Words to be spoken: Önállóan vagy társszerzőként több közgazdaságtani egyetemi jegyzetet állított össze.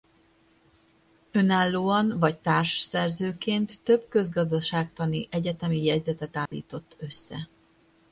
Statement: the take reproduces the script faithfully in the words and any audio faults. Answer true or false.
false